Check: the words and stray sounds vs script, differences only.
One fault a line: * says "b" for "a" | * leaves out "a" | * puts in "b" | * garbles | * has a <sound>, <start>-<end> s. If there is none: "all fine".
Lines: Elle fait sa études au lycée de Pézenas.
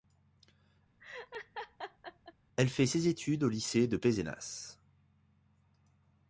* has a laugh, 1.0-2.3 s
* says "ses" for "sa"